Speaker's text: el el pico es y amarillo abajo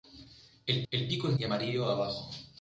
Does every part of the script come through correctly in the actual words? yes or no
yes